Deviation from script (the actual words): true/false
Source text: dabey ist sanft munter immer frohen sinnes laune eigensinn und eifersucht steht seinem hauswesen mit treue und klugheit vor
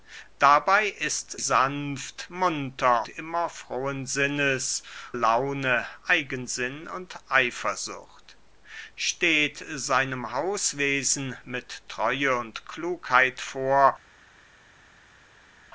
false